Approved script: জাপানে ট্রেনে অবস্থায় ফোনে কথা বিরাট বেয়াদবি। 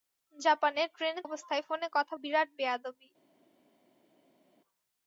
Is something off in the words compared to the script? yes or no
no